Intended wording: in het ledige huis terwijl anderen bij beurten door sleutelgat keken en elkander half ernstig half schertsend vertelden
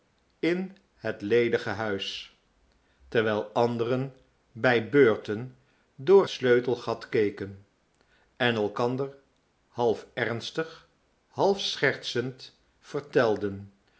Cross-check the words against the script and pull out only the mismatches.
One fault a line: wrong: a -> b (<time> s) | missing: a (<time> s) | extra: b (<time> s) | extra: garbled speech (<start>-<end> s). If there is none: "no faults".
no faults